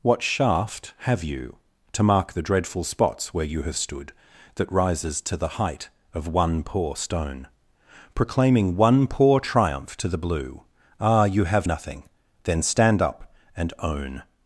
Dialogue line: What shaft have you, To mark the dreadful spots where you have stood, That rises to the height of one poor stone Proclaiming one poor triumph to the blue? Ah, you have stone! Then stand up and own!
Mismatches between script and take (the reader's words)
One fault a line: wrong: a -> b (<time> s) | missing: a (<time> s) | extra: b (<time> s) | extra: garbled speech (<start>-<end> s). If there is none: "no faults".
wrong: stone -> nothing (11.6 s)